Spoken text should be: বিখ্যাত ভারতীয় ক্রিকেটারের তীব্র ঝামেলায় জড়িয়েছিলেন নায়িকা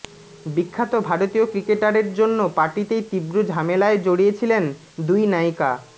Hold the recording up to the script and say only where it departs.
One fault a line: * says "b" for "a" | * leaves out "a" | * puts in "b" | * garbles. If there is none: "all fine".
* puts in "জন্য পার্টিতেই"
* puts in "দুই"